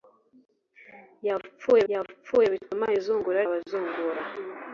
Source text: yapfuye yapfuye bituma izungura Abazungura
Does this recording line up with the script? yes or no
yes